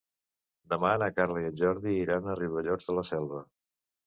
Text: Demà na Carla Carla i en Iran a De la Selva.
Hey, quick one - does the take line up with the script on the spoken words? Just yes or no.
no